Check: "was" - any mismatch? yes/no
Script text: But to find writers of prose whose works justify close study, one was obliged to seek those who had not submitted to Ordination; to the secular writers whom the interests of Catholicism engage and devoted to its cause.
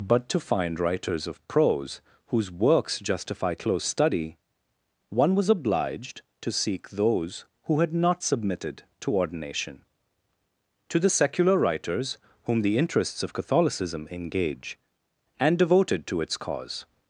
no